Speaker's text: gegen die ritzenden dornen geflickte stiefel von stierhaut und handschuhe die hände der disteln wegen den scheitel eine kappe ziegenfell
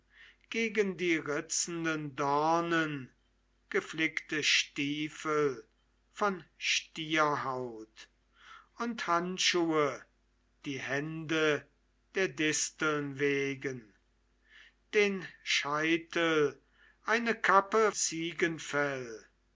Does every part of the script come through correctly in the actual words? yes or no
yes